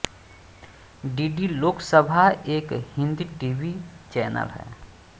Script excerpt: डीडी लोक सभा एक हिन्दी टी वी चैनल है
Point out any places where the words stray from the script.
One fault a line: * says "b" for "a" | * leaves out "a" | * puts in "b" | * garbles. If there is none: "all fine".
all fine